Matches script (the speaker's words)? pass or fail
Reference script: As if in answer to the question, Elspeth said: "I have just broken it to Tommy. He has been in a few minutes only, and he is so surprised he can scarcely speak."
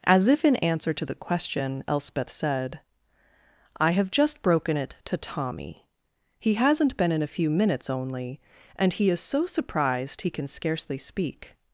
fail